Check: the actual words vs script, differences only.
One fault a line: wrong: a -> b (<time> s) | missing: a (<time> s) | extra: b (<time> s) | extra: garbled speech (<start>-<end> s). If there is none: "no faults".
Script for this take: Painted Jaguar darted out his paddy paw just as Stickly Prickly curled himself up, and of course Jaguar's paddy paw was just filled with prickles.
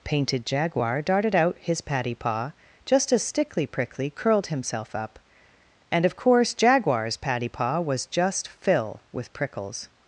wrong: filled -> fill (8.5 s)